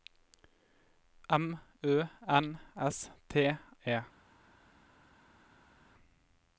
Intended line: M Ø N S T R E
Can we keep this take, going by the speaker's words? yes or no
no